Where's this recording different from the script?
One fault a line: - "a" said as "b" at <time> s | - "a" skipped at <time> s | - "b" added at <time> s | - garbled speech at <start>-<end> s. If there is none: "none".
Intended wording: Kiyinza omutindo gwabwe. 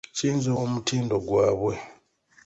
none